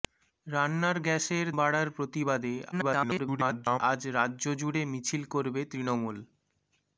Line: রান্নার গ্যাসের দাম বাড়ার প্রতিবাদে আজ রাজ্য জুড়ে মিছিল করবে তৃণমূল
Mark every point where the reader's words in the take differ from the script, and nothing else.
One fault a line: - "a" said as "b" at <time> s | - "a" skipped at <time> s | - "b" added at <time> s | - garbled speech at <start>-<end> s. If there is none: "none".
- "দাম" skipped at 1.5 s
- garbled speech at 2.7-3.8 s